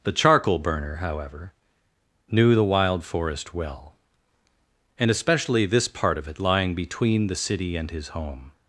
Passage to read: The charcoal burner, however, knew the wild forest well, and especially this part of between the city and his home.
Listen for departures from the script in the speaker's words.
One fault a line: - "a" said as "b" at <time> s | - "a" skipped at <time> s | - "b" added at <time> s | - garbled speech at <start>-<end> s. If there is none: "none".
- "it lying" added at 6.3 s